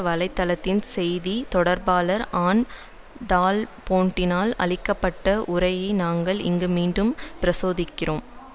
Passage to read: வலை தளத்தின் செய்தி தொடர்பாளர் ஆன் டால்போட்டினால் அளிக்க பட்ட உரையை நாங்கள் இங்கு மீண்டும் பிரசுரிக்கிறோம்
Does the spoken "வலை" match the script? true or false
true